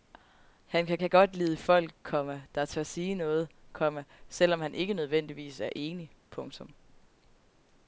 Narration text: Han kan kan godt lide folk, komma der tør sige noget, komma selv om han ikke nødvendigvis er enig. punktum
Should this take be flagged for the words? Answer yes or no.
no